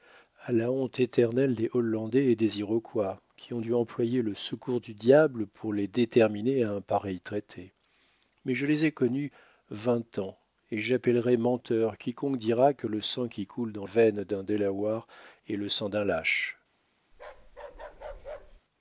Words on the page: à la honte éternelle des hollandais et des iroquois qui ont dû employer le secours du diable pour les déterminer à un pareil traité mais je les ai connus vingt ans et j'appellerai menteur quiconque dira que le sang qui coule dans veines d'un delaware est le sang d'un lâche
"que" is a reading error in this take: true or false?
false